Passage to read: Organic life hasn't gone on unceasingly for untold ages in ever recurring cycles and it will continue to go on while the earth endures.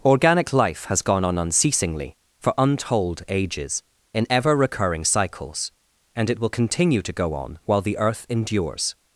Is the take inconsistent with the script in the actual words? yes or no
yes